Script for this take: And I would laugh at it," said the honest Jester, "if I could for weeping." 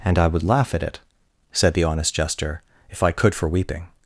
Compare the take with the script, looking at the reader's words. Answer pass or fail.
pass